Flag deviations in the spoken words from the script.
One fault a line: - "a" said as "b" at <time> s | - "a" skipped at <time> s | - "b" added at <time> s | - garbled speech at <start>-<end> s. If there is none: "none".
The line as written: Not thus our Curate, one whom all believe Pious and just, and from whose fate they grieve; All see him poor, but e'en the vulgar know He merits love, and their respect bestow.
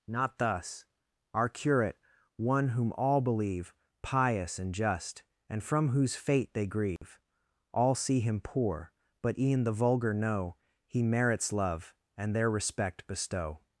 none